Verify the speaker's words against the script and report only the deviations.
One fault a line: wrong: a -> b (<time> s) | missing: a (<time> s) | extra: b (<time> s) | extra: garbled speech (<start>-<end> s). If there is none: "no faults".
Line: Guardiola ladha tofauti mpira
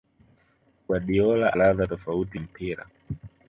no faults